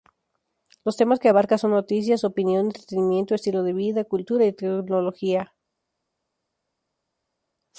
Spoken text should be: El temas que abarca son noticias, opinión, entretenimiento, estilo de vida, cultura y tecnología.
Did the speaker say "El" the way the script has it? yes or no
no